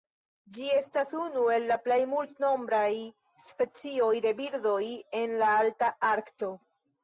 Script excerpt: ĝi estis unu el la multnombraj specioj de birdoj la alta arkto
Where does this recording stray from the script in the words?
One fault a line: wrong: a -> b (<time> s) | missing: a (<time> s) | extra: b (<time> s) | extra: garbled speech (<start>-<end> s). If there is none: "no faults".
wrong: estis -> estas (0.8 s)
extra: plej (1.8 s)
extra: en (5.2 s)